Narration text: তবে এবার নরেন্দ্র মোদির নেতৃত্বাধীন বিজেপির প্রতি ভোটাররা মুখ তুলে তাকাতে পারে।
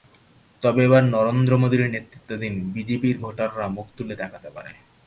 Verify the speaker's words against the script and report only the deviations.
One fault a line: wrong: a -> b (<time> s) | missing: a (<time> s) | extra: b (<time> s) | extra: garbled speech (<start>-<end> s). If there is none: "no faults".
missing: প্রতি (3.1 s)